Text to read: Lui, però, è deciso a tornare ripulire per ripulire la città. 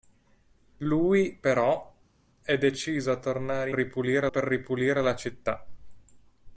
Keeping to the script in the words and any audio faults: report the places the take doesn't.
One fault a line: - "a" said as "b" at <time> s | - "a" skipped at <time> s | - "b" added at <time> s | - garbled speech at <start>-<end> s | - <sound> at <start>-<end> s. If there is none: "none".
none